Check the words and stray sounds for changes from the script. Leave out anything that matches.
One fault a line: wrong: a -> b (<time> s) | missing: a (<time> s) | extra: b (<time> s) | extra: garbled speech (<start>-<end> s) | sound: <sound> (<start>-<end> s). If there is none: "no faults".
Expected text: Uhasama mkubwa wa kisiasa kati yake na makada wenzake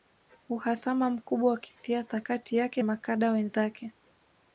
missing: na (2.8 s)